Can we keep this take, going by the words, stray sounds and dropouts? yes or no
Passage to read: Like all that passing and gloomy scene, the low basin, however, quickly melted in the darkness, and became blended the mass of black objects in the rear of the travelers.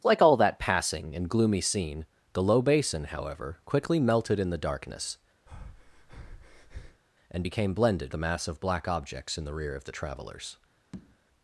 no